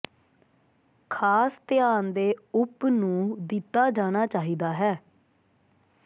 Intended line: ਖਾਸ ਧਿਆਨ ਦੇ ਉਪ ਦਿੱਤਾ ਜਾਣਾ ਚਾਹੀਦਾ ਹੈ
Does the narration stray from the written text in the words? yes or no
yes